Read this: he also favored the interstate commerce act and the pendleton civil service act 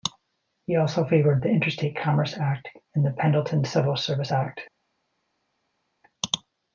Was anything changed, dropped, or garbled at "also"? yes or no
no